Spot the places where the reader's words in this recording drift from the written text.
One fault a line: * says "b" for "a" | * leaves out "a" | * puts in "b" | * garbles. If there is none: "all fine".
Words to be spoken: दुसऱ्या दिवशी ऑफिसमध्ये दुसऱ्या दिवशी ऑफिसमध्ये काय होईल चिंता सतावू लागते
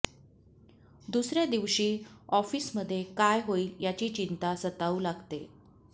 * leaves out "दुसऱ्या दिवशी ऑफिसमध्ये"
* puts in "याची"